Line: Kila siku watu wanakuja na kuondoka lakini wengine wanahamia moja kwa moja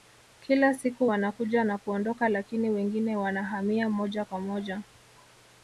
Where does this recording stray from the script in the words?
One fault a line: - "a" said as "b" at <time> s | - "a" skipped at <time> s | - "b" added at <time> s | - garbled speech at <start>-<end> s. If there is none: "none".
- "watu" skipped at 1.1 s